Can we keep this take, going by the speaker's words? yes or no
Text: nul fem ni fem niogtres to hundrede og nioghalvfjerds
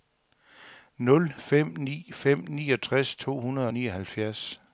yes